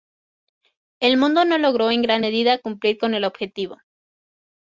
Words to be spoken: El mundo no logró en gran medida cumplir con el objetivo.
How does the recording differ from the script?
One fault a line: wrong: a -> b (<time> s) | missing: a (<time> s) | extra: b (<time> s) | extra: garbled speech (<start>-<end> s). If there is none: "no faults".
no faults